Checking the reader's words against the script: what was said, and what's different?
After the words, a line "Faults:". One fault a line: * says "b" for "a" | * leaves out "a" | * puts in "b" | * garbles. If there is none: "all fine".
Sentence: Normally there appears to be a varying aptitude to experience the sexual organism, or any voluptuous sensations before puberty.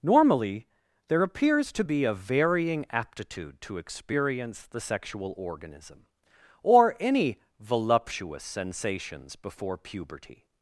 Normally there appears to be a varying aptitude to experience the sexual organism, or any voluptuous sensations before puberty.
Faults:
all fine